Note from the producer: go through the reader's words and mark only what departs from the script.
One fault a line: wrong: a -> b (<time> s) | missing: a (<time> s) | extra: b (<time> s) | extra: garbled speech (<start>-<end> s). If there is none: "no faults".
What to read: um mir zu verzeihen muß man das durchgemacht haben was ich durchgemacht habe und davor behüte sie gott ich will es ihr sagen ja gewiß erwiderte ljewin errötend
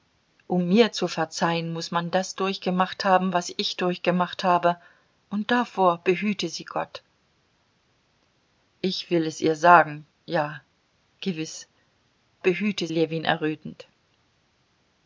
wrong: erwiderte -> behüte (12.4 s)